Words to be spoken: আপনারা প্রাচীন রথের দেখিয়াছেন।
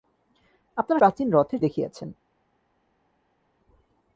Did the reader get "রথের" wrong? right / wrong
right